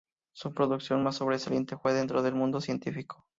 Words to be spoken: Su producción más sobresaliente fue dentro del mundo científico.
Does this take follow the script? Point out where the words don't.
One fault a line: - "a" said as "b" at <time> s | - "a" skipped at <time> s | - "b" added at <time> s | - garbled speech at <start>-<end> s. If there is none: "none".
none